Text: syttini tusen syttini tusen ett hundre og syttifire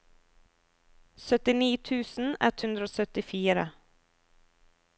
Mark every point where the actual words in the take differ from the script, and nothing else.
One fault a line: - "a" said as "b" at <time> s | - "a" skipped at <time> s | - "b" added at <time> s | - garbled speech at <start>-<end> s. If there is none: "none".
- "syttini tusen" skipped at 2.3 s